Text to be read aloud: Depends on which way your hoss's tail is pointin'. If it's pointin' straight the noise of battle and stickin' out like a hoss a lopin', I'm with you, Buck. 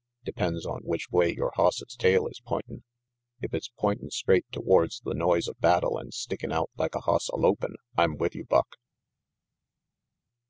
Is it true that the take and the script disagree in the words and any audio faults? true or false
true